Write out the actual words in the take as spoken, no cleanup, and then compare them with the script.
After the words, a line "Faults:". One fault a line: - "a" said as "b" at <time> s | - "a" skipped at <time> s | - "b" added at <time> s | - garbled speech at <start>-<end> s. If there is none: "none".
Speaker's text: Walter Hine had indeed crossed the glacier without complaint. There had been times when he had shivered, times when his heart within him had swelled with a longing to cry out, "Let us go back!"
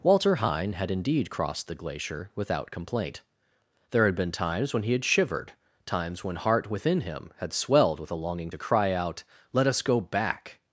Walter Hine had indeed crossed the glacier without complaint. There had been times when he had shivered, times when heart within him had swelled with a longing to cry out, "Let us go back!"
Faults:
- "his" skipped at 6.4 s